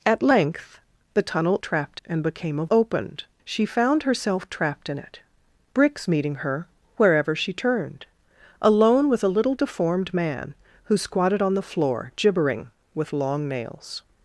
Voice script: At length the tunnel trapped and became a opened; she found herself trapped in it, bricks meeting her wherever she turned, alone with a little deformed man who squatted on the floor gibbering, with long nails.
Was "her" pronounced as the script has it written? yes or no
yes